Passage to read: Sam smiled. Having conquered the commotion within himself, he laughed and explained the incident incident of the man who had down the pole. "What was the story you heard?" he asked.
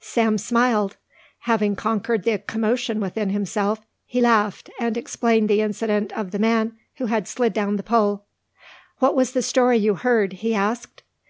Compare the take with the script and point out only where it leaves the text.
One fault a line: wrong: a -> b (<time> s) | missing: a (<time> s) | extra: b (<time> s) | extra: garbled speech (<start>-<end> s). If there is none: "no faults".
missing: incident (6.1 s)
extra: slid (7.3 s)